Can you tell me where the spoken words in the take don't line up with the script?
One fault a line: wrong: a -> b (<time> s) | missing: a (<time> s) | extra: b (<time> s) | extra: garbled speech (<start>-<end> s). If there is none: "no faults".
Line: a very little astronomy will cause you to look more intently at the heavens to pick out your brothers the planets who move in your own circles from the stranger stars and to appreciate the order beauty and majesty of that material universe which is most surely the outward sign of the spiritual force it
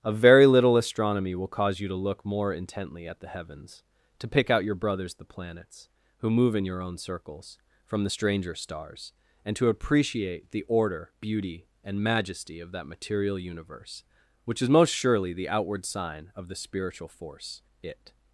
no faults